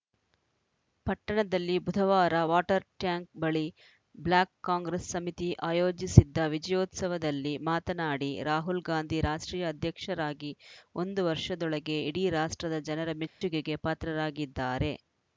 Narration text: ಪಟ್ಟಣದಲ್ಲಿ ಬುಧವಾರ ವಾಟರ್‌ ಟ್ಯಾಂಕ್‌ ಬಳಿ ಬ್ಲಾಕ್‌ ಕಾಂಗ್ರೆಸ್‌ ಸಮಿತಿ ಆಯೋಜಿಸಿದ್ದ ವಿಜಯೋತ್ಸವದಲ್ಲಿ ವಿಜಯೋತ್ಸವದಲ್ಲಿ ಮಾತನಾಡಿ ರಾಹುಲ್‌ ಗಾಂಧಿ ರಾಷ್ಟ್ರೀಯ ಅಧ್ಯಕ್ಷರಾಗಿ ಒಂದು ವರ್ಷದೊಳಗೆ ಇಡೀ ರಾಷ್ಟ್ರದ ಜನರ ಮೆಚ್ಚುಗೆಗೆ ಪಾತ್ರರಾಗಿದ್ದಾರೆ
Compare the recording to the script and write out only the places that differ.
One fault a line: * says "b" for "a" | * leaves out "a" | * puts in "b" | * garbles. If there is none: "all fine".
* leaves out "ವಿಜಯೋತ್ಸವದಲ್ಲಿ"